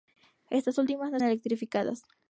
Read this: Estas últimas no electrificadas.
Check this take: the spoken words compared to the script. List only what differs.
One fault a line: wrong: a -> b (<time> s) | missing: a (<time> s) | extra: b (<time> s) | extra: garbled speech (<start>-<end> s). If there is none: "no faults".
no faults